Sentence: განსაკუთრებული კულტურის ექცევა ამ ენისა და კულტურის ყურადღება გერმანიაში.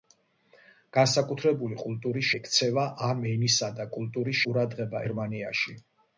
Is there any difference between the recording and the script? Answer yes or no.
no